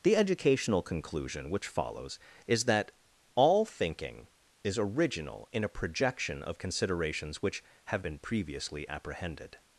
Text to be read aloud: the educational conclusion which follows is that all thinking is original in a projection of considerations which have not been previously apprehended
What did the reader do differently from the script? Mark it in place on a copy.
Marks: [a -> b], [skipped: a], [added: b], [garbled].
the educational conclusion which follows is that all thinking is original in a projection of considerations which have [skipped: not] been previously apprehended